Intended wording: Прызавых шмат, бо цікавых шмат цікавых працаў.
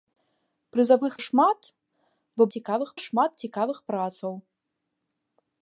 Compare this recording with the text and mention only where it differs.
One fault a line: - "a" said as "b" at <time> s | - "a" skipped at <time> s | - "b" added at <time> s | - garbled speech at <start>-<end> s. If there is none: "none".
none